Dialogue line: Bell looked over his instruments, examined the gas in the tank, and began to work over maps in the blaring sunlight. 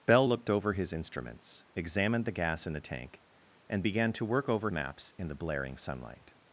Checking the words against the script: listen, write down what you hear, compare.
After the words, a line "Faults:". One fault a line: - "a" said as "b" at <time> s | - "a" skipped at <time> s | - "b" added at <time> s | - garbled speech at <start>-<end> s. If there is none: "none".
Bell looked over his instruments, examined the gas in the tank, and began to work over maps in the blaring sunlight.
Faults:
none